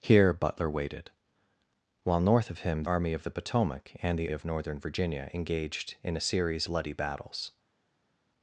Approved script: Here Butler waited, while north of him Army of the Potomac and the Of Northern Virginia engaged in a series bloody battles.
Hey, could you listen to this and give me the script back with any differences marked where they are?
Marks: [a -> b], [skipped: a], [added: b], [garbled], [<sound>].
Here Butler waited, while north of him Army of the Potomac and the Of Northern Virginia engaged in a series bloody battles.